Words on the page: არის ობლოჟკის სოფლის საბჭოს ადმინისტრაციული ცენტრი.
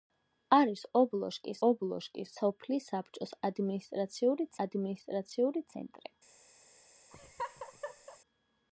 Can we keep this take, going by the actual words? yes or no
no